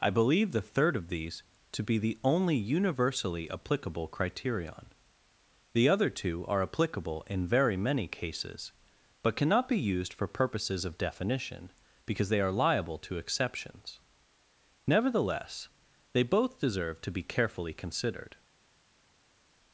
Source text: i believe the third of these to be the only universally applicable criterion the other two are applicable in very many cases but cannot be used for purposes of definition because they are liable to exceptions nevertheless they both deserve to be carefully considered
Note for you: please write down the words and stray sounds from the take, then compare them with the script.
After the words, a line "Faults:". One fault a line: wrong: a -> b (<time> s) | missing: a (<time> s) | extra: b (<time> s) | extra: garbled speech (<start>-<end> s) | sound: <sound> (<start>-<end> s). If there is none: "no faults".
i believe the third of these to be the only universally applicable criterion the other two are applicable in very many cases but cannot be used for purposes of definition because they are liable to exceptions nevertheless they both deserve to be carefully considered
Faults:
no faults